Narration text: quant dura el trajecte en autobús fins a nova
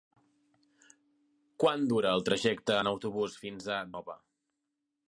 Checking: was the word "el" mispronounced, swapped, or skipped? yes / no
no